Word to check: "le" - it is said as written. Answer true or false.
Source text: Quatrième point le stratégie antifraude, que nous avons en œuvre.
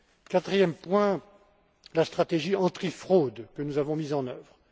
false